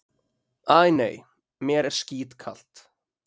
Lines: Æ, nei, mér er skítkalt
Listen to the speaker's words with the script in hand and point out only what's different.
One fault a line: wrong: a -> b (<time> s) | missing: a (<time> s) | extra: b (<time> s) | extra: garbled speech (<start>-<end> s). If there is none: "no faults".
no faults